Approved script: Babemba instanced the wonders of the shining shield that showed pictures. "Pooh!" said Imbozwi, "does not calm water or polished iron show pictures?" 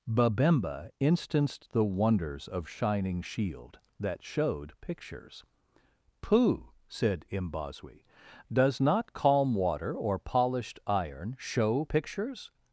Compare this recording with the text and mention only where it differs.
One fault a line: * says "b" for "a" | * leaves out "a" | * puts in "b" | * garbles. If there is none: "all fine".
* leaves out "the"